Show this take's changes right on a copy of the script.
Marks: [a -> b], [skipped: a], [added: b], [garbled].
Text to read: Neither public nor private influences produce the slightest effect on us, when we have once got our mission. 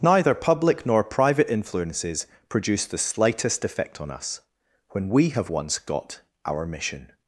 Neither public nor private influences produce the slightest effect on us, when we have once got our mission.